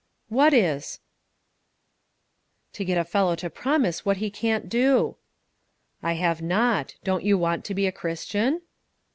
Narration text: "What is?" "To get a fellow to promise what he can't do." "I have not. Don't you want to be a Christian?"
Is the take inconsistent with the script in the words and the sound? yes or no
no